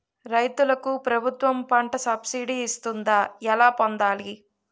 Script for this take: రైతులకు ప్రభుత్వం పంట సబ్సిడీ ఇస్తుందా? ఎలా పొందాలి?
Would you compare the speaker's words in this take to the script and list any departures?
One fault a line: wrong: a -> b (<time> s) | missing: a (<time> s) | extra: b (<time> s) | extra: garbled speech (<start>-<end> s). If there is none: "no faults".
no faults